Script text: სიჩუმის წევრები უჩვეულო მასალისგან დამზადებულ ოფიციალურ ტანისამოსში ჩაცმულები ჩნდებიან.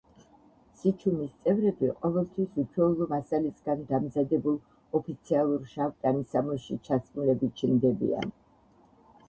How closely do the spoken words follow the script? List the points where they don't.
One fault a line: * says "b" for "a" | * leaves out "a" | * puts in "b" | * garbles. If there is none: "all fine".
* puts in "ყოველთვის"
* puts in "შავ"